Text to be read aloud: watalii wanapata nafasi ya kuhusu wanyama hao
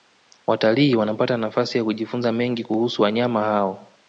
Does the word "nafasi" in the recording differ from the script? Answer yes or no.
no